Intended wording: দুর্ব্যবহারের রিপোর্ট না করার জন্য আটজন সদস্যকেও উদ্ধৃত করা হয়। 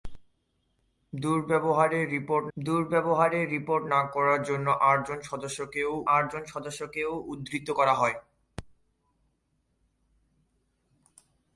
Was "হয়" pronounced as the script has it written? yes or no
yes